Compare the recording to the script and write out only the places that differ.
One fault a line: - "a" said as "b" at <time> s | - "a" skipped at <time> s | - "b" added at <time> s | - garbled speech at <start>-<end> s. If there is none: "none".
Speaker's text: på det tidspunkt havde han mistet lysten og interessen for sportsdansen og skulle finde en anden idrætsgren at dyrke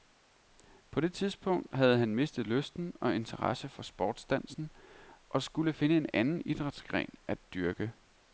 none